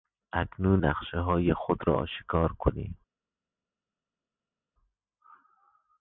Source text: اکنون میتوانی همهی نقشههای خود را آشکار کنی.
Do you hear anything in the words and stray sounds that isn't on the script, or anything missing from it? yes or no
yes